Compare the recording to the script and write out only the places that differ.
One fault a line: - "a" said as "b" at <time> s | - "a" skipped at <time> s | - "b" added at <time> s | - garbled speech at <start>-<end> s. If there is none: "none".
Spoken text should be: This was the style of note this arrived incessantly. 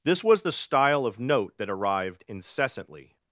- "this" said as "that" at 1.6 s